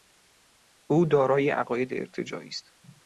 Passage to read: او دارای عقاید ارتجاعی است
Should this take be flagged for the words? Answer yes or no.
no